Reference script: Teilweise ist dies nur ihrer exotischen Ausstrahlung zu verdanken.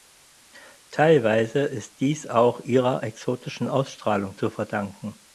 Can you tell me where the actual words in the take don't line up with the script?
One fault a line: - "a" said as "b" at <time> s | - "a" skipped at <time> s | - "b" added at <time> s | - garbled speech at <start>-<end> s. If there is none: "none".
- "nur" said as "auch" at 2.2 s